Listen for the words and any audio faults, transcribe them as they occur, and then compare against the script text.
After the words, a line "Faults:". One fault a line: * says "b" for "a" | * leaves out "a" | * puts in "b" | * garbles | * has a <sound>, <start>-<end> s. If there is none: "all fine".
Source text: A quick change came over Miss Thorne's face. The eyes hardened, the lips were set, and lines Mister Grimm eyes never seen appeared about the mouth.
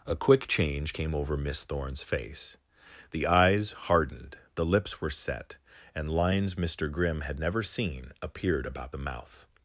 A quick change came over Miss Thorne's face. The eyes hardened, the lips were set, and lines Mister Grimm had never seen appeared about the mouth.
Faults:
* says "had" for "eyes"